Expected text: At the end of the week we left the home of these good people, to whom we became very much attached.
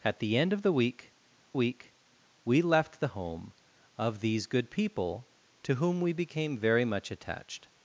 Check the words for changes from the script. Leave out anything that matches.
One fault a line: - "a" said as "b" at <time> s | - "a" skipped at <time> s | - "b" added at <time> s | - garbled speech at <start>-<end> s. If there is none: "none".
- "week" added at 1.5 s